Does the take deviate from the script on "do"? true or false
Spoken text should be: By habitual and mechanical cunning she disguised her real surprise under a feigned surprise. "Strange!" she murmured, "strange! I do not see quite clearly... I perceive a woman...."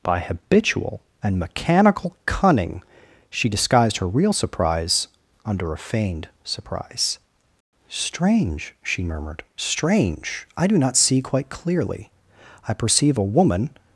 false